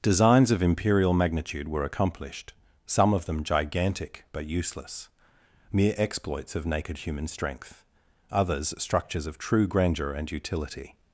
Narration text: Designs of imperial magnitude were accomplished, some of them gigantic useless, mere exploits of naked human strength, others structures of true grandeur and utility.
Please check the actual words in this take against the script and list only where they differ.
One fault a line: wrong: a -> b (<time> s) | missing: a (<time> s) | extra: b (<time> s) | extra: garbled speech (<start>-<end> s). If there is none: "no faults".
extra: but (4.3 s)